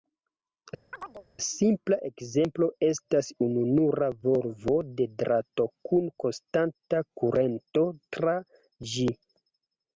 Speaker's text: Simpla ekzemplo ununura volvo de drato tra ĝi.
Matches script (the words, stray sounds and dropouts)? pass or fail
fail